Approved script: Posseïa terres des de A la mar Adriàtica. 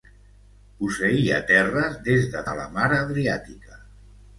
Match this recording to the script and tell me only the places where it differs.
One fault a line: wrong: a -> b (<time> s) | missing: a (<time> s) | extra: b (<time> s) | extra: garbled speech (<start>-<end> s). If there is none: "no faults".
no faults